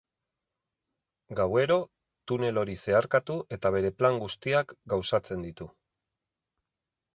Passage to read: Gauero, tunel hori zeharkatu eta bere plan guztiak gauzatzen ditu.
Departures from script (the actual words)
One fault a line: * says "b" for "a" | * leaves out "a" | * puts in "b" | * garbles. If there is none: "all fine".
all fine